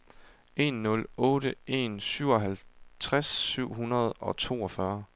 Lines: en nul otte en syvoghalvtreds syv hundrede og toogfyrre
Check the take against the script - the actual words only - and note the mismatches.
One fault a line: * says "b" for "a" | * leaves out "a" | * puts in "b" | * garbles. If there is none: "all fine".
all fine